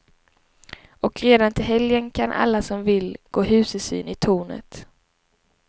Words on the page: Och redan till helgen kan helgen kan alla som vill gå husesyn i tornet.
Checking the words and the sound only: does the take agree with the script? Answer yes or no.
no